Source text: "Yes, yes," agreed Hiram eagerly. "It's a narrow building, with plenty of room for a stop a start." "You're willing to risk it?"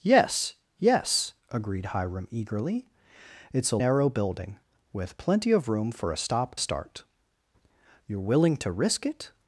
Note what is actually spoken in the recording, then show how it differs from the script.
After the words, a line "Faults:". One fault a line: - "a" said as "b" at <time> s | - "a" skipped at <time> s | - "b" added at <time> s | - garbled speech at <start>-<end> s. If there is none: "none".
"Yes, yes," agreed Hiram eagerly. "It's a narrow building, with plenty of room for a stop a start." "You're willing to risk it?"
Faults:
none